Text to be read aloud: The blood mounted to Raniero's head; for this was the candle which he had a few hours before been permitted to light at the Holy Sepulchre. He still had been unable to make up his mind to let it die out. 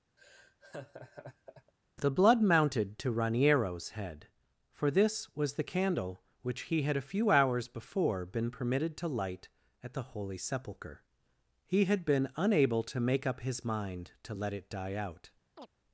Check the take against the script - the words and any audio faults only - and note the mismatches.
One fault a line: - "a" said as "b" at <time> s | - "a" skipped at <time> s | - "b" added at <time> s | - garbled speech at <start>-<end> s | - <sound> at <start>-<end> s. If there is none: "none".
- laugh at 0.2-1.7 s
- "still" skipped at 11.8 s
- chirp at 15.6-15.7 s